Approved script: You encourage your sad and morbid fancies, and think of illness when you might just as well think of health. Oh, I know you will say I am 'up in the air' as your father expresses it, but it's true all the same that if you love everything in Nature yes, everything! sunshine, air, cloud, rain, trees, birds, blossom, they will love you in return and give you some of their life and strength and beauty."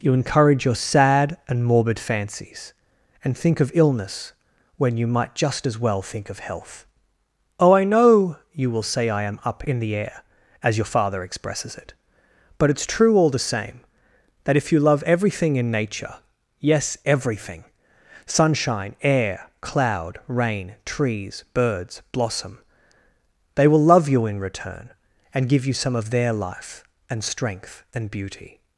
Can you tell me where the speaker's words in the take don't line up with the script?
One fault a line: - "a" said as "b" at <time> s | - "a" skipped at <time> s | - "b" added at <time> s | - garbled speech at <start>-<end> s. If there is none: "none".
none